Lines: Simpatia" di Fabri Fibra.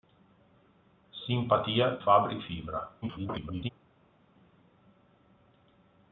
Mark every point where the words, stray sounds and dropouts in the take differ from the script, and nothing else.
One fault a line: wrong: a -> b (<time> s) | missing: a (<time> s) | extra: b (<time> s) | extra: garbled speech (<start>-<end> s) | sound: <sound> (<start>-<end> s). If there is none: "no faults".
missing: di (2.0 s)
extra: garbled speech (3.0-3.7 s)